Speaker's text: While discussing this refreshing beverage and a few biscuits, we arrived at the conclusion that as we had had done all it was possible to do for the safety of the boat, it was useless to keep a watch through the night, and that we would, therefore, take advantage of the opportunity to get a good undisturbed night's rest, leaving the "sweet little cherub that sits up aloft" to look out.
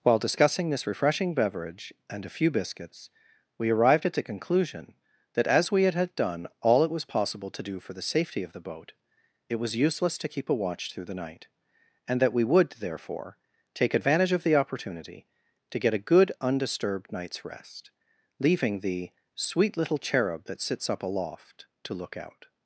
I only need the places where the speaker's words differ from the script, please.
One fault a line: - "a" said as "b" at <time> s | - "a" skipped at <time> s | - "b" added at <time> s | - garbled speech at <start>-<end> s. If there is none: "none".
none